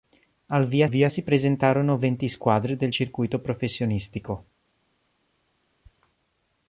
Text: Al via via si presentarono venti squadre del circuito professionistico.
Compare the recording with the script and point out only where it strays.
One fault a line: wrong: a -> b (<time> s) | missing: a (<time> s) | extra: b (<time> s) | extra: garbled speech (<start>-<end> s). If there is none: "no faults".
no faults